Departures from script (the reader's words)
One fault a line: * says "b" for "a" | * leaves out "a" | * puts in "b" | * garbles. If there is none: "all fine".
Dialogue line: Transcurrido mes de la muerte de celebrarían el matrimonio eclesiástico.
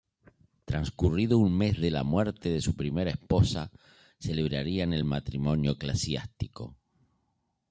* puts in "un"
* puts in "su primera esposa"